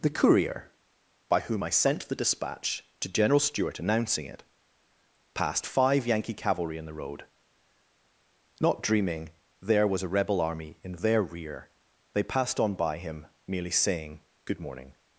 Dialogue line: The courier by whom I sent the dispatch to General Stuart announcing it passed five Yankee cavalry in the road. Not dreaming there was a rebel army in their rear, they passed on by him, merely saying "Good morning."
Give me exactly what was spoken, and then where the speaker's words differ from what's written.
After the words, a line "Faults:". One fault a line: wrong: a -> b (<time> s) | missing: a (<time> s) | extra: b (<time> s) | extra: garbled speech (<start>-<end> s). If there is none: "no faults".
The courier by whom I sent the dispatch to General Stuart announcing it passed five Yankee cavalry in the road. Not dreaming there was a rebel army in their rear, they passed on by him, merely saying "Good morning."
Faults:
no faults